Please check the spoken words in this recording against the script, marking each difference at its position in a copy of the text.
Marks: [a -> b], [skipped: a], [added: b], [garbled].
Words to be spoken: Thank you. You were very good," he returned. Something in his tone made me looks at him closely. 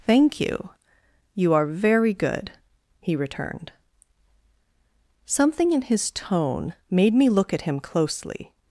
Thank you. You [were -> are] very good," he returned. Something in his tone made me [looks -> look] at him closely.